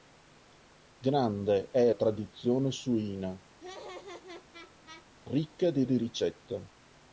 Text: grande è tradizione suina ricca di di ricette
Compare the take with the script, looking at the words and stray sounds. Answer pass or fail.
fail